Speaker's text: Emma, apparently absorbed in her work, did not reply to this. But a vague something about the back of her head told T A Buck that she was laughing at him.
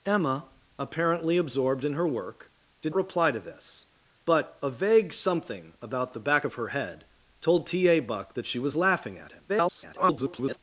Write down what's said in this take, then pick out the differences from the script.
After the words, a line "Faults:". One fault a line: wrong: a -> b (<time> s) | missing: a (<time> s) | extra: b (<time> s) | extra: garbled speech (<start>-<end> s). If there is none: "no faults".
Emma, apparently absorbed in her work, did reply to this. But a vague something about the back of her head told T A Buck that she was laughing at him. [garbled]
Faults:
missing: not (3.0 s)
extra: garbled speech (9.5-10.6 s)